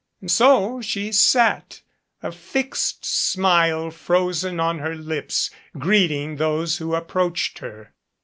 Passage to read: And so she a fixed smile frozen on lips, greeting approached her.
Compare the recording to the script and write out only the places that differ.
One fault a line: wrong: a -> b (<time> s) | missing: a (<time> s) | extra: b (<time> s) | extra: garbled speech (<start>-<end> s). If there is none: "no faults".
extra: sat (1.1 s)
extra: her (4.8 s)
extra: those who (6.4 s)